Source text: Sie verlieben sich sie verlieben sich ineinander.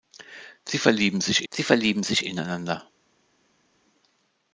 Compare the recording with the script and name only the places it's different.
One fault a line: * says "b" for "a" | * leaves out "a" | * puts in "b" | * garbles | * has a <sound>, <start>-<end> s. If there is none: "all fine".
all fine